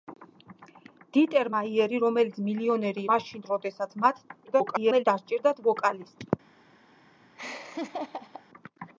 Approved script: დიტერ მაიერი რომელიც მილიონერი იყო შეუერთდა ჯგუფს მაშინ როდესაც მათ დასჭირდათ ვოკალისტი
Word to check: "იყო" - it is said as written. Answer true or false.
false